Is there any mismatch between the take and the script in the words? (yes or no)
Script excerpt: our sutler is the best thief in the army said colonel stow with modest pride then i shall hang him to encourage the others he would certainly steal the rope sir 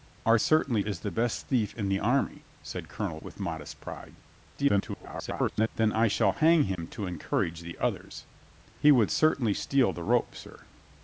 yes